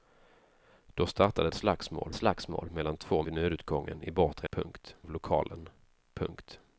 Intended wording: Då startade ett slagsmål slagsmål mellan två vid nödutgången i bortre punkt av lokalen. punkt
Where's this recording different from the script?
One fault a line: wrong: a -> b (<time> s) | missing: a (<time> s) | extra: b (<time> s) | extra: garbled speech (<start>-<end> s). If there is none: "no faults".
no faults